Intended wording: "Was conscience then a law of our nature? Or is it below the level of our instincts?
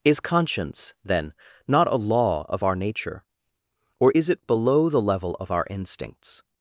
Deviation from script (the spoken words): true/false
true